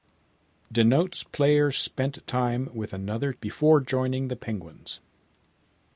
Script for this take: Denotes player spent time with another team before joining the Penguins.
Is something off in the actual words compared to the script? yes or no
yes